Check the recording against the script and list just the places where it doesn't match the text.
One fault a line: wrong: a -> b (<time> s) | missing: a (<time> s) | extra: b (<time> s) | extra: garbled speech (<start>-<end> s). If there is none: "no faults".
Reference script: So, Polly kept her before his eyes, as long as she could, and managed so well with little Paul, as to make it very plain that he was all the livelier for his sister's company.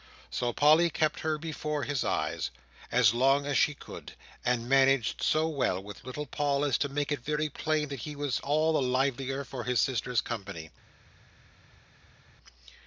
no faults